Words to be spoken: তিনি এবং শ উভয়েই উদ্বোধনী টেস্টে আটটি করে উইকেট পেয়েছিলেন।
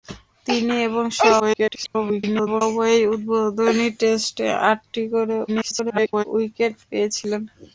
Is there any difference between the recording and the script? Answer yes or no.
yes